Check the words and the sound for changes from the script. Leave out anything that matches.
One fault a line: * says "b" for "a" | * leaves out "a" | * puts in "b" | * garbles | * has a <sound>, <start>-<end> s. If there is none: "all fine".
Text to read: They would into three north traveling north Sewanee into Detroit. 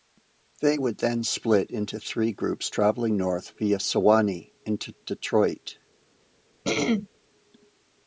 * puts in "then split"
* says "groups" for "north"
* puts in "via"
* has a throat clearing, 6.6-7.1 s